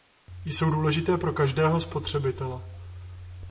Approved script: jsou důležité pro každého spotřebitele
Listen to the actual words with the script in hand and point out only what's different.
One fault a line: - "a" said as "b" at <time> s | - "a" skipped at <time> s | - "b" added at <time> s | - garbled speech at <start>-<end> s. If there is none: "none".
none